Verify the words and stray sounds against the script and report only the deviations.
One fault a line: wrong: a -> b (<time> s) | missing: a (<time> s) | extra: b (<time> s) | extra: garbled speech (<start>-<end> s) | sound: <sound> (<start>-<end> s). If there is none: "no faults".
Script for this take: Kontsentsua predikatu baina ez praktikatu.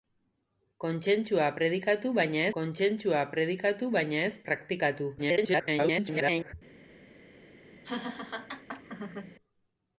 extra: kontsentsua predikatu baina (2.6 s)
extra: garbled speech (5.2-6.5 s)
sound: laugh (7.8-9.4 s)